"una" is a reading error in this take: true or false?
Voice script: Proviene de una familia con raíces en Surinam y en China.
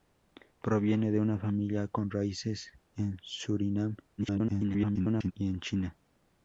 false